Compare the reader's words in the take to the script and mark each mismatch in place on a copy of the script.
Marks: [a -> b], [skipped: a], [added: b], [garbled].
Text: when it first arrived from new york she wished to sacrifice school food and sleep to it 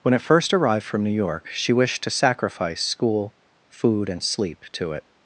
when it first arrived from new york she wished to sacrifice school food and sleep to it